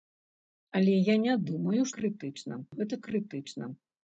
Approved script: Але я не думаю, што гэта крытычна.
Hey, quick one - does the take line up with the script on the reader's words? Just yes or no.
no